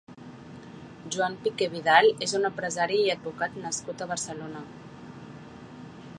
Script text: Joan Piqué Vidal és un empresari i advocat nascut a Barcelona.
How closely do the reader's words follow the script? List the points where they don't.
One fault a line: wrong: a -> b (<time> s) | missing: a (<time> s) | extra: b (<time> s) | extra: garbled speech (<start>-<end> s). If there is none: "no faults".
no faults